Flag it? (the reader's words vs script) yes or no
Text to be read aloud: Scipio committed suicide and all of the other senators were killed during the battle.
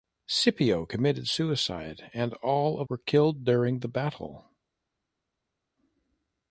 yes